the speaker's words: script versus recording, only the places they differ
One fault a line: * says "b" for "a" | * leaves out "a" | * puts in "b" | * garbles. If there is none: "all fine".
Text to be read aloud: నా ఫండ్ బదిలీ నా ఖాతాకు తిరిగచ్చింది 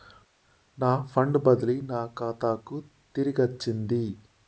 all fine